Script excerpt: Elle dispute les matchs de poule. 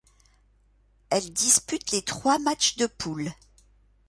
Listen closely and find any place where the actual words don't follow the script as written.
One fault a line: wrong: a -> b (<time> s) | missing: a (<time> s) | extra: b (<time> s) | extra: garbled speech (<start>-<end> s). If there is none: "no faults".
extra: trois (2.0 s)